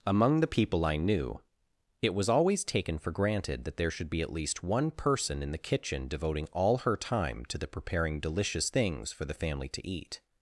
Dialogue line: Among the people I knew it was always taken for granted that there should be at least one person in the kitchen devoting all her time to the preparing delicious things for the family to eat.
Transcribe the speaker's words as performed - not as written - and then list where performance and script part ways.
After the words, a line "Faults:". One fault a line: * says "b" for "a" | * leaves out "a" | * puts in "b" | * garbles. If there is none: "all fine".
Among the people I knew it was always taken for granted that there should be at least one person in the kitchen devoting all her time to the preparing delicious things for the family to eat.
Faults:
all fine